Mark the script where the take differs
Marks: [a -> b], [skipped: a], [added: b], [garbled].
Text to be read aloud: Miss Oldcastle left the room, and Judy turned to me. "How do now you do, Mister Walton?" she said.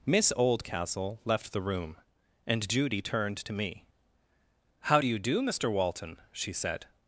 Miss Oldcastle left the room, and Judy turned to me. "How do [skipped: now] you do, Mister Walton?" she said.